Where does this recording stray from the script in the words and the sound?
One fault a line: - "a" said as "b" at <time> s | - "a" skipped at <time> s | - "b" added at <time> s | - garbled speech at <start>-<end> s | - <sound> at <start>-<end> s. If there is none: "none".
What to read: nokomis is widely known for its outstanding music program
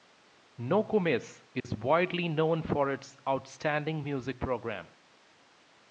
- dropout at 1.6-1.6 s